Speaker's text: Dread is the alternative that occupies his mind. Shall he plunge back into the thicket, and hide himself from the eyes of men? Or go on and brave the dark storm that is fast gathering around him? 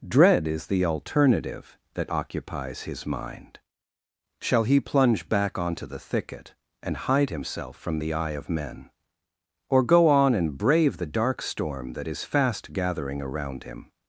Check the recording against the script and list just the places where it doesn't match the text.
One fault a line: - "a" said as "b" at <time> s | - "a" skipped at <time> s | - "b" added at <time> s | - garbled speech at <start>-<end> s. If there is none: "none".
- "into" said as "onto" at 5.6 s
- "eyes" said as "eye" at 8.1 s